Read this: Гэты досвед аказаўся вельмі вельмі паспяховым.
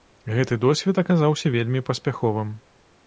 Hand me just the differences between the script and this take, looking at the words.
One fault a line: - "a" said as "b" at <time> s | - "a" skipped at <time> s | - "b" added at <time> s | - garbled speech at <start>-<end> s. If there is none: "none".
- "вельмі" skipped at 1.8 s